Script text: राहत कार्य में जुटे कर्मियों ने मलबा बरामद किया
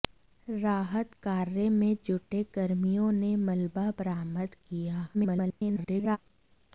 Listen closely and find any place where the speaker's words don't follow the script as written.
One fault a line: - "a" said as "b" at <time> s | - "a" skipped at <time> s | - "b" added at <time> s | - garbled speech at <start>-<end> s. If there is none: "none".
- garbled speech at 5.1-6.2 s